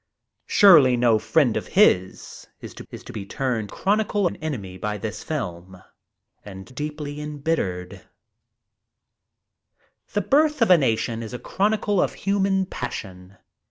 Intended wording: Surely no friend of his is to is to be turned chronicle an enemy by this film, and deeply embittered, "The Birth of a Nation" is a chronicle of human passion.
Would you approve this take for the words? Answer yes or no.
yes